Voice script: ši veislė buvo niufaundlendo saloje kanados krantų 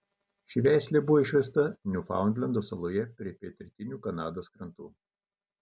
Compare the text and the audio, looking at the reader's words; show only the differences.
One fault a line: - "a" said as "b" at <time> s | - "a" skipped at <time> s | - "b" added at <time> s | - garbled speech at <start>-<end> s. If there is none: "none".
- "išvesta" added at 1.2 s
- "prie pietrytinių" added at 3.2 s